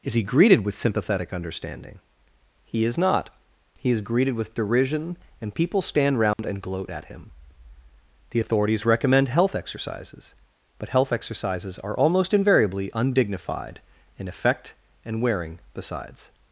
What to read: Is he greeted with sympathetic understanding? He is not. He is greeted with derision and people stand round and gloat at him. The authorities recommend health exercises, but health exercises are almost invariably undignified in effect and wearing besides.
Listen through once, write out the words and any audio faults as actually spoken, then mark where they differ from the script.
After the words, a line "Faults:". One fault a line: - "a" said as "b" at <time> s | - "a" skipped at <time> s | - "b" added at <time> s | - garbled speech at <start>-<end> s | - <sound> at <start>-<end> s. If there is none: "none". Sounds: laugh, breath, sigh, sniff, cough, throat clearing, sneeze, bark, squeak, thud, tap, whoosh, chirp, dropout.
Is he greeted with sympathetic understanding? He is not. He is greeted with derision and people stand round and gloat at him. The authorities recommend health exercises, but health exercises are almost invariably undignified in effect and wearing besides.
Faults:
- dropout at 6.3-6.4 s